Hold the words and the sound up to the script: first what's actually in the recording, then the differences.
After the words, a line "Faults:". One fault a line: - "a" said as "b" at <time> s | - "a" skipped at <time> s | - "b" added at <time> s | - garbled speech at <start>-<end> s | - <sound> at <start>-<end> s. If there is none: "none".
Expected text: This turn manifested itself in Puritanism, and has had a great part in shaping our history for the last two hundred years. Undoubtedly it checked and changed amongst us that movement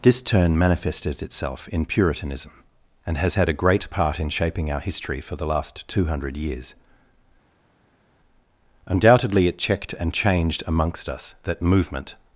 This turn manifested itself in Puritanism, and has had a great part in shaping our history for the last two hundred years. Undoubtedly it checked and changed amongst us that movement
Faults:
none